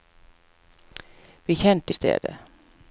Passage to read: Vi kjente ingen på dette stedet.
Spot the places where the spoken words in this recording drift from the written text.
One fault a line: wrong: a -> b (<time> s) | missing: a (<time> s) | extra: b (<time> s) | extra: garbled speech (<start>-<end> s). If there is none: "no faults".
missing: ingen på dette (1.9 s)